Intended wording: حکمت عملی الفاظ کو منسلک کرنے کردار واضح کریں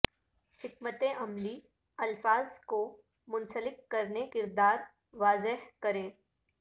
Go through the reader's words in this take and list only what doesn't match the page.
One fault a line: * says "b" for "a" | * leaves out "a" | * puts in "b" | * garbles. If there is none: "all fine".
all fine